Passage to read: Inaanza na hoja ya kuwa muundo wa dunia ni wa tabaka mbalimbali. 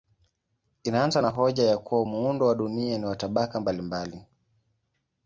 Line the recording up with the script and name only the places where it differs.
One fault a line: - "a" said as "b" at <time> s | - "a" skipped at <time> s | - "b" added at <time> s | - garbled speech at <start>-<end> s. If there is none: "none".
none